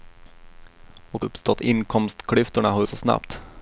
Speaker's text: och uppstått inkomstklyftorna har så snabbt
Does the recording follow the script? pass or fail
pass